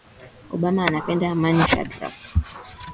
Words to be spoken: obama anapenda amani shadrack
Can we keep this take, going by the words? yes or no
yes